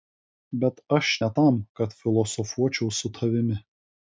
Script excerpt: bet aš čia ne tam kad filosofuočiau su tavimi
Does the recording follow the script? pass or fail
fail